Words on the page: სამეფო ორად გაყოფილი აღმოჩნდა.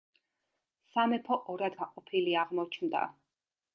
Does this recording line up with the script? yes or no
yes